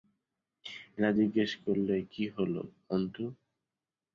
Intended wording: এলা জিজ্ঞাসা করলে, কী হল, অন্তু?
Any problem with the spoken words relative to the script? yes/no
no